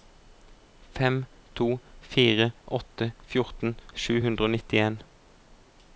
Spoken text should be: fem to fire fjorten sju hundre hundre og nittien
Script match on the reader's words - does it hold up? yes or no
no